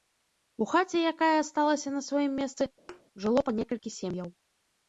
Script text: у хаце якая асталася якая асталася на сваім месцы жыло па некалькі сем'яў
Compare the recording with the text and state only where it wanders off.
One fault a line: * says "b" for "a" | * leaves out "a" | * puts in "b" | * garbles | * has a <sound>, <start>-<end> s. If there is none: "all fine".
* leaves out "якая асталася"
* has a thud, 2.9-3.0 s